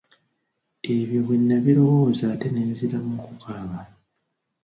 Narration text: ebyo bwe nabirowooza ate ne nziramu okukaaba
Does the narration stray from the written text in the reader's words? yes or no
no